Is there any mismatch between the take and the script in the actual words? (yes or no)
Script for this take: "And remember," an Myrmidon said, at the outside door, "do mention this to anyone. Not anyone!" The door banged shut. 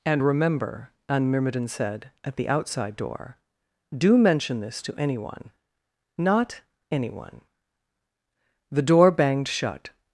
no